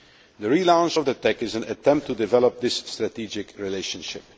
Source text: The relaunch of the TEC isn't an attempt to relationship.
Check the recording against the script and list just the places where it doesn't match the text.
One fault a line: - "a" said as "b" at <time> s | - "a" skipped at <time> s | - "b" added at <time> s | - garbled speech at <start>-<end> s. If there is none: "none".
- "isn't" said as "is" at 1.4 s
- "develop this strategic" added at 2.2 s